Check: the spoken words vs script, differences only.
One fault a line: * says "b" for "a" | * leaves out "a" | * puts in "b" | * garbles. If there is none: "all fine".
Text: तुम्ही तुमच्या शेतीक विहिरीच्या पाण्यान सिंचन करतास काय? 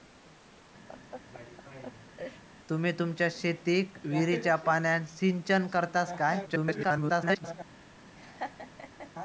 * garbles